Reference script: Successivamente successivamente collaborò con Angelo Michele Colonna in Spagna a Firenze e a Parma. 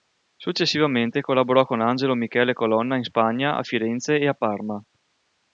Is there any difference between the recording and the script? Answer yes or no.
yes